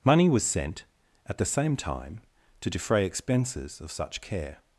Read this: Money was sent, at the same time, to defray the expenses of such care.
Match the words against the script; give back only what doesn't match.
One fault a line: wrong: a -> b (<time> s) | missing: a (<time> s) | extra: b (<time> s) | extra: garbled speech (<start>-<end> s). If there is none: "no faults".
missing: the (3.0 s)